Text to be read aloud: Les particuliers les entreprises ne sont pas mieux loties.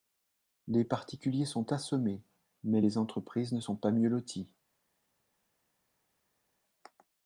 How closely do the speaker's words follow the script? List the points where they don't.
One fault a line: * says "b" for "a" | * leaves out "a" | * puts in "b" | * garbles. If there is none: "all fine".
* puts in "sont assommés mais"